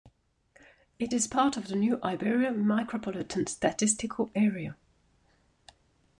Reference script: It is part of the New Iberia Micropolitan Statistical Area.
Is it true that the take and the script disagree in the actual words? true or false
false